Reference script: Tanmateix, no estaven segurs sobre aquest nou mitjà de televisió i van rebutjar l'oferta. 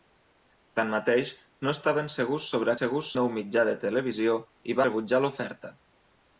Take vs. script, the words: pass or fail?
fail